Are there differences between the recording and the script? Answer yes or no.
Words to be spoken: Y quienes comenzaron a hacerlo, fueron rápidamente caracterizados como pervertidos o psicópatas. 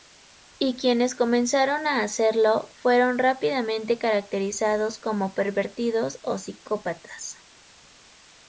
no